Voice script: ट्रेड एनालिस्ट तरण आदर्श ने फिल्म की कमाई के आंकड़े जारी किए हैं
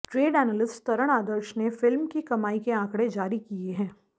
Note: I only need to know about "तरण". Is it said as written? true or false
true